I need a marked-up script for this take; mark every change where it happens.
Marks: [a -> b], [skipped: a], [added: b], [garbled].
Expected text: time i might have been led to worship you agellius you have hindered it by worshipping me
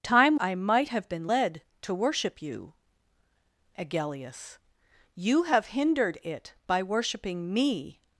time i might have been led to worship you agellius you have hindered it by worshipping me